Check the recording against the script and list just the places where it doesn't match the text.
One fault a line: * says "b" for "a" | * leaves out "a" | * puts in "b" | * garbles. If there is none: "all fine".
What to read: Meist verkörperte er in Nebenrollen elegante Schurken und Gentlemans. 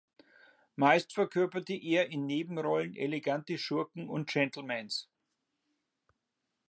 all fine